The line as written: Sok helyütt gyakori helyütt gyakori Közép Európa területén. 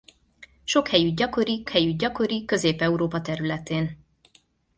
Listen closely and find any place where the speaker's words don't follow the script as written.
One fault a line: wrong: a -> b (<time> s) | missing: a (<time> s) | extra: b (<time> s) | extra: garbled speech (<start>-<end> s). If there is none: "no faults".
no faults